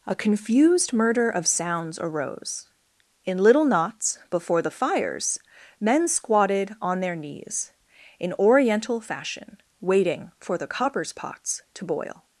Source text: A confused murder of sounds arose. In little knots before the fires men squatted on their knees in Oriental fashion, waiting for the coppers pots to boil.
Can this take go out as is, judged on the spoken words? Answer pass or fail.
pass